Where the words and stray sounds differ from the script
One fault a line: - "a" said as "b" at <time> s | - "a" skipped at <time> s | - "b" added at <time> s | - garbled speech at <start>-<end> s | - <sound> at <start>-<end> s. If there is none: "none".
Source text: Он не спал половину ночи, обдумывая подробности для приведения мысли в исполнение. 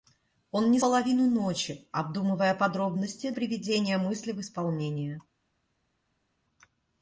- "спал" skipped at 0.8 s
- "для" skipped at 3.3 s